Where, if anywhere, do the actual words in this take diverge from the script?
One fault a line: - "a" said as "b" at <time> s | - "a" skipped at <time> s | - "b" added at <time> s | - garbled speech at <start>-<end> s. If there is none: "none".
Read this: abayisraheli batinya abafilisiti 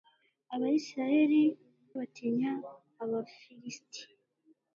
none